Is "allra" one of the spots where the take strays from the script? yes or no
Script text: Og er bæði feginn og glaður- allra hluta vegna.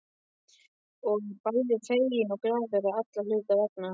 no